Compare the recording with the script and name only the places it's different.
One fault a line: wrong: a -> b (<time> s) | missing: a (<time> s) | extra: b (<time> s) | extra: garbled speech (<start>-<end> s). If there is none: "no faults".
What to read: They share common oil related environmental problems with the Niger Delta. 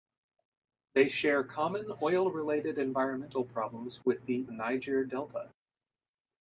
no faults